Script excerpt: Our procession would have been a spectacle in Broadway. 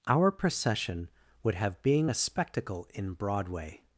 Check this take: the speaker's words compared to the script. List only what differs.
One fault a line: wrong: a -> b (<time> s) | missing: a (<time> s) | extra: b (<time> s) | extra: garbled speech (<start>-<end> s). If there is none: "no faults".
wrong: been -> being (1.8 s)